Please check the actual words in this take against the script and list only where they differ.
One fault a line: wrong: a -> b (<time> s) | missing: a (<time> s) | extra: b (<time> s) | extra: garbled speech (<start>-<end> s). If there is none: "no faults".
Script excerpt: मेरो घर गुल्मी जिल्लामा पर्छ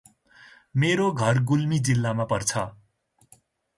no faults